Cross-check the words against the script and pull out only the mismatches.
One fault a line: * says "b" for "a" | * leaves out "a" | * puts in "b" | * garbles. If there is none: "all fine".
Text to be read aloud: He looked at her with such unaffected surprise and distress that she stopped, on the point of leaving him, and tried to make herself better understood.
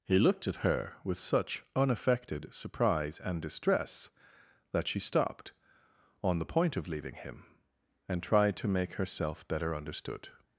all fine